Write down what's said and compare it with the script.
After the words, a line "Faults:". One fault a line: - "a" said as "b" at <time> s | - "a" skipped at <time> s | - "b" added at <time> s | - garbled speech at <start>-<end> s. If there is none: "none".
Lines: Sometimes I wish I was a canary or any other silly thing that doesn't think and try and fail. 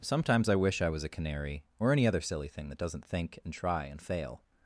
Sometimes I wish I was a canary or any other silly thing that doesn't think and try and fail.
Faults:
none